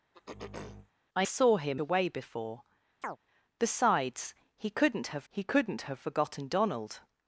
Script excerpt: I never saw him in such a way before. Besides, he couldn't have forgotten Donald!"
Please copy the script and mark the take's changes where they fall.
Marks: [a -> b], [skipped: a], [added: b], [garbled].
I [skipped: never] saw him [skipped: in such] a way before. Besides, he couldn't have [added: he couldn't have] forgotten Donald!"